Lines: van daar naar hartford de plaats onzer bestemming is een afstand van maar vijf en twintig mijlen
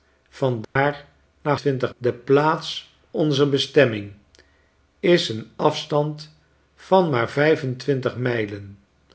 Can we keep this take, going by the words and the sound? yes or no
no